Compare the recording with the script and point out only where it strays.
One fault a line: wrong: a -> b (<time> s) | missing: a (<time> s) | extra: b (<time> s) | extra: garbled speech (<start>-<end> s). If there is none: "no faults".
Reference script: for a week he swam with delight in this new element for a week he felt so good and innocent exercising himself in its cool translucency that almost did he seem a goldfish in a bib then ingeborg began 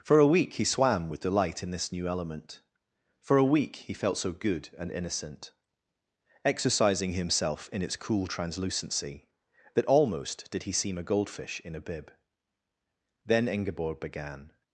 no faults